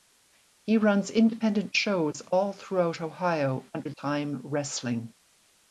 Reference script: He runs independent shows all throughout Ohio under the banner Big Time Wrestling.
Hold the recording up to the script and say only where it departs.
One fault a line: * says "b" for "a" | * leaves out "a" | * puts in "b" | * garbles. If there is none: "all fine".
* leaves out "the banner Big"